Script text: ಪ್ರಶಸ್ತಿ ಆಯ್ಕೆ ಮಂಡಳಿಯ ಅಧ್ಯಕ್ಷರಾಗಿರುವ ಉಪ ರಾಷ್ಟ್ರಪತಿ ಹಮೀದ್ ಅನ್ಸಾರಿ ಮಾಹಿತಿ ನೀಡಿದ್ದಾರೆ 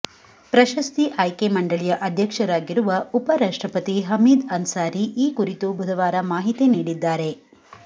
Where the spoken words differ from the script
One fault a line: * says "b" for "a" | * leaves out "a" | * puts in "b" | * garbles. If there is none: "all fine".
* puts in "ಈ ಕುರಿತು ಬುಧವಾರ"